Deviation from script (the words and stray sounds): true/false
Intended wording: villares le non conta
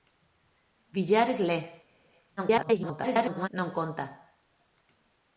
true